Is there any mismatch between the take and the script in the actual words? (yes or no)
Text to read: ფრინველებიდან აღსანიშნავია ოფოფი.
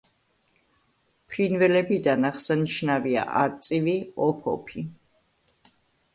yes